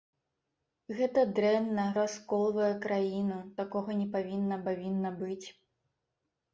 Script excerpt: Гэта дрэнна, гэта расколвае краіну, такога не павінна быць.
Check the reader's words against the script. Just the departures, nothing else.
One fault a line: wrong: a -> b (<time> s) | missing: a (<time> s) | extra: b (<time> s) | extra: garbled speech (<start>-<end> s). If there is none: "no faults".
missing: гэта (1.9 s)
extra: павінна (4.7 s)